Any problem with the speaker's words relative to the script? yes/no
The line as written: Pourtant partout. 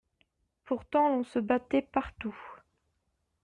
yes